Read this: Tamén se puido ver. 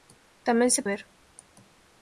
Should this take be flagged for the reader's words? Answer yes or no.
yes